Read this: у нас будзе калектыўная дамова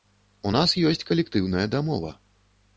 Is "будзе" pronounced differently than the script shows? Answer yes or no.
yes